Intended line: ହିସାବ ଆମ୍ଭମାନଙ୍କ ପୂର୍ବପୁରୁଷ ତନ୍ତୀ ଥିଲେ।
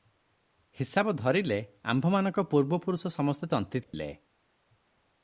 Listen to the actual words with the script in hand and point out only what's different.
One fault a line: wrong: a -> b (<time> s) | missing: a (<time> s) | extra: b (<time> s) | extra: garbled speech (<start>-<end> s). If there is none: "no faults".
extra: ଧରିଲେ (1.1 s)
extra: ସମସ୍ତେ (3.2 s)